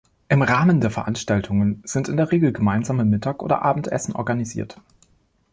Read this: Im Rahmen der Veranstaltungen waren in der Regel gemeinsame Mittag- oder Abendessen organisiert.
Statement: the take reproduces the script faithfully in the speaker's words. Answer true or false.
false